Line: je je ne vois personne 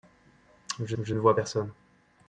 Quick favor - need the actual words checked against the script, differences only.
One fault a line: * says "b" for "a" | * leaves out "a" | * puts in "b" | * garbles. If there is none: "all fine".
all fine